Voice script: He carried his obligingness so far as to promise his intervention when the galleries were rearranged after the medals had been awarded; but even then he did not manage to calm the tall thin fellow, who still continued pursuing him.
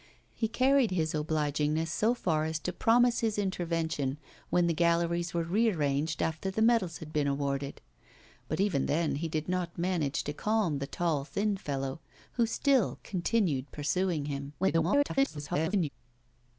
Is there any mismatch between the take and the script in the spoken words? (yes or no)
yes